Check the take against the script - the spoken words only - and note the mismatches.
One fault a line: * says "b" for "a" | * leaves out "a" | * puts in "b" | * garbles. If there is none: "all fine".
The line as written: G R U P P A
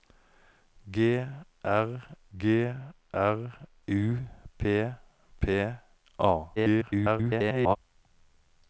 * puts in "g R"
* garbles